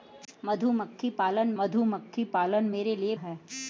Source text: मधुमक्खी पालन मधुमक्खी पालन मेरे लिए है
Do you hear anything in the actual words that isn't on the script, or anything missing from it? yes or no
no